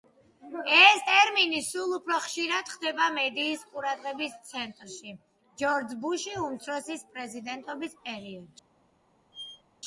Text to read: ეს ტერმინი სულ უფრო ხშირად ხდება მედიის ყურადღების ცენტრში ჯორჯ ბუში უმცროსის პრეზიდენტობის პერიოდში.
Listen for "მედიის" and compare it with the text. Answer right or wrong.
right